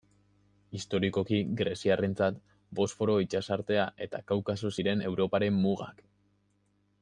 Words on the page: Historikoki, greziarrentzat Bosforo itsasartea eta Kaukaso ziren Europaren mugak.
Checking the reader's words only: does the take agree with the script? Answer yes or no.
yes